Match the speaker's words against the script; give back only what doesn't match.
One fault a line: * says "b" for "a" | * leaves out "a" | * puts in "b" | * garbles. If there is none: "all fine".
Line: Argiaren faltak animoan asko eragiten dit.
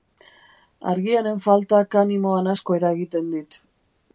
all fine